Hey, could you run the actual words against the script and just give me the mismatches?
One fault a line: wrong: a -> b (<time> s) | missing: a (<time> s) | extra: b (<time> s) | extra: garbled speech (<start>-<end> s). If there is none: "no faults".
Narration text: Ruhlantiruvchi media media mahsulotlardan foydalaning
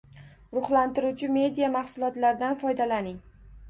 missing: media (1.7 s)